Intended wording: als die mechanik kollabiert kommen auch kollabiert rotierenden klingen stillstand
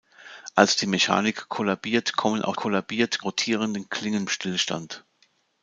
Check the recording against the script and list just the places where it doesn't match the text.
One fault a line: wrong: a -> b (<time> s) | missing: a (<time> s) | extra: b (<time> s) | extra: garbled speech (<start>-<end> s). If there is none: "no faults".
no faults